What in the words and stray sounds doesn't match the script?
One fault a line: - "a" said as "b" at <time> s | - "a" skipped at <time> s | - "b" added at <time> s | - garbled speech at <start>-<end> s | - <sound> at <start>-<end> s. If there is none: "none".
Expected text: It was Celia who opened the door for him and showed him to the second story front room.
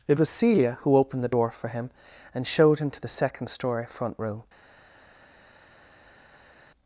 none